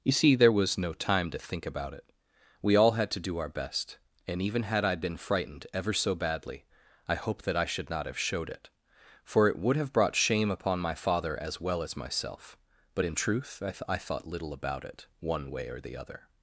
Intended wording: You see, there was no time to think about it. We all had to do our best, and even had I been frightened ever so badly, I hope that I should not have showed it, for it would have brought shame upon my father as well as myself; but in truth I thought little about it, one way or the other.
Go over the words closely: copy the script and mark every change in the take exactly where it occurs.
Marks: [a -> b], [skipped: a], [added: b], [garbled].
You see, there was no time to think about it. We all had to do our best, and even had I been frightened ever so badly, I hope that I should not have showed it, for it would have brought shame upon my father as well as myself; but in truth I [added: th I] thought little about it, one way or the other.